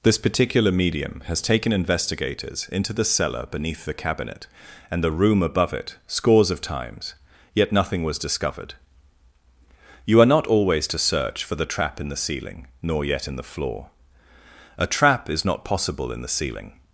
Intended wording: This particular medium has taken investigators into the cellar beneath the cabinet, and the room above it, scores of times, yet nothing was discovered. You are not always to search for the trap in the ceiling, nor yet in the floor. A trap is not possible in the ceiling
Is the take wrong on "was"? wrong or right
right